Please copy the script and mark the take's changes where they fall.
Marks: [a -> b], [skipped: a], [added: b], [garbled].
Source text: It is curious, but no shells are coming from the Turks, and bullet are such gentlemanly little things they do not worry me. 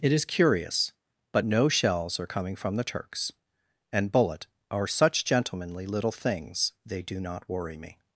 It is curious, but no shells are coming from the Turks, and bullet are such gentlemanly little things they do not worry me.